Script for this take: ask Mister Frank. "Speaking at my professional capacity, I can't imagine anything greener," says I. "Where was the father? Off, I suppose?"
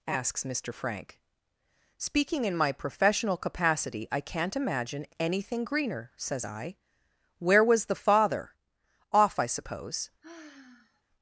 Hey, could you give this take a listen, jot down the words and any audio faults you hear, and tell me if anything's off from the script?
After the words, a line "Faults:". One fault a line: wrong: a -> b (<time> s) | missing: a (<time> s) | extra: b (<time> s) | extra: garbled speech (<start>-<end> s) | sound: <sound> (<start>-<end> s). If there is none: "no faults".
asks Mister Frank. "Speaking in my professional capacity, I can't imagine anything greener," says I. "Where was the father? Off, I suppose?"
Faults:
wrong: ask -> asks (0.1 s)
wrong: at -> in (2.5 s)
sound: sigh (10.2-11.0 s)